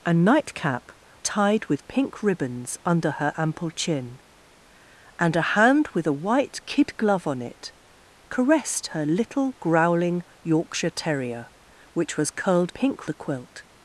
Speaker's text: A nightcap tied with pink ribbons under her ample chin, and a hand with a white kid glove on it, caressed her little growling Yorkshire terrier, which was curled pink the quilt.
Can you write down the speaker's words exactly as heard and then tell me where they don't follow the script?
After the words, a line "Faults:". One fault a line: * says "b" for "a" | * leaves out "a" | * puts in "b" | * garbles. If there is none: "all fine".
A nightcap tied with pink ribbons under her ample chin, and a hand with a white kid glove on it, caressed her little growling Yorkshire terrier, which was curled pink the quilt.
Faults:
all fine